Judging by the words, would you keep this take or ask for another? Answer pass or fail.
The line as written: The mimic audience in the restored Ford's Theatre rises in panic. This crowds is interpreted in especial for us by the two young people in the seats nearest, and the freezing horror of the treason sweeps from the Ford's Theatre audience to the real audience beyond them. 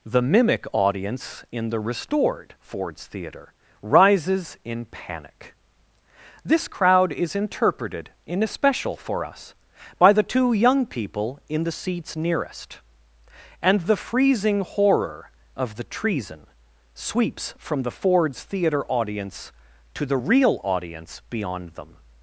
fail